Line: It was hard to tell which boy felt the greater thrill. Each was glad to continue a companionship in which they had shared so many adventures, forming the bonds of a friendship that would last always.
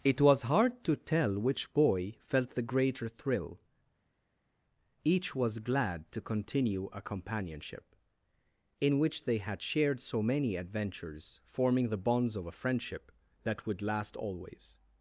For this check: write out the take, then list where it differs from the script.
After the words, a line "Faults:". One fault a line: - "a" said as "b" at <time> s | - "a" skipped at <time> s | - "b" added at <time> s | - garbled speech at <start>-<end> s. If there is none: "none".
It was hard to tell which boy felt the greater thrill. Each was glad to continue a companionship in which they had shared so many adventures, forming the bonds of a friendship that would last always.
Faults:
none